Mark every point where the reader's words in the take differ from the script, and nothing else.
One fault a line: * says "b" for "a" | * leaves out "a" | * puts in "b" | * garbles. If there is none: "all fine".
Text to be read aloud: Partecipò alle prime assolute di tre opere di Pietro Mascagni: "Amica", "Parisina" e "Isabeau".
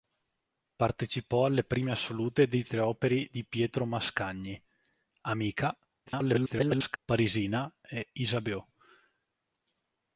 * garbles